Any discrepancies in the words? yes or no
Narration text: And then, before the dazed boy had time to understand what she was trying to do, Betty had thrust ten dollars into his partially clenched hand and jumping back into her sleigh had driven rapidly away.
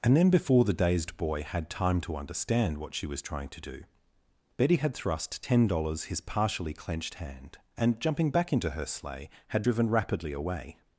yes